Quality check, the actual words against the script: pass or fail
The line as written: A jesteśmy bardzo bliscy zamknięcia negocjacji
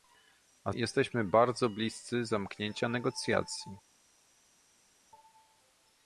pass